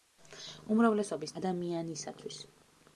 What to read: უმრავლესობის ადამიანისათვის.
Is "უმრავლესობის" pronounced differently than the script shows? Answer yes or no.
no